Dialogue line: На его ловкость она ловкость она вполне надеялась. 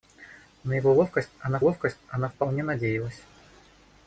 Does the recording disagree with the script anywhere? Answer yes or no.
no